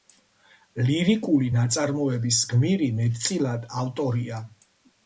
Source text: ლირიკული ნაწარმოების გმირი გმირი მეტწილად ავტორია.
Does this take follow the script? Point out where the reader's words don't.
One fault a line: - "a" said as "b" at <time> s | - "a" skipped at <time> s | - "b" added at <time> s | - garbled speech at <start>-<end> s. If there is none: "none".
- "გმირი" skipped at 2.9 s